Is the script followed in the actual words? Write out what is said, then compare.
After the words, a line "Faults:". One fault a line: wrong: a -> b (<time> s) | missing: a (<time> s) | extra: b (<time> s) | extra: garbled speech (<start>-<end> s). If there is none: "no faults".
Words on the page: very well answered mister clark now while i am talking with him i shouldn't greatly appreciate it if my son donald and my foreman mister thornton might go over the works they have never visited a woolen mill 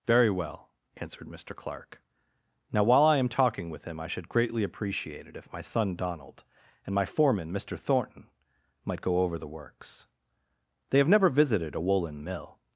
very well answered mister clark now while i am talking with him i should greatly appreciate it if my son donald and my foreman mister thornton might go over the works they have never visited a woolen mill
Faults:
wrong: shouldn't -> should (4.1 s)